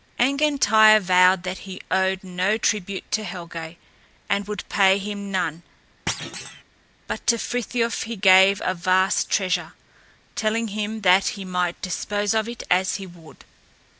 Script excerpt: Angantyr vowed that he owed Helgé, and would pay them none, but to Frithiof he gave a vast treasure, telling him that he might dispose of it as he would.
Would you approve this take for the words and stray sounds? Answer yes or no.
no